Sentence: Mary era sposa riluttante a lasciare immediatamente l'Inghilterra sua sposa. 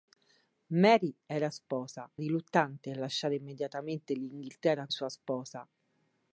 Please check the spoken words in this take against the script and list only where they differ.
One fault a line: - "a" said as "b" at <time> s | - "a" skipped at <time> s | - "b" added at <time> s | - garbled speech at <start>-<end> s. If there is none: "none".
none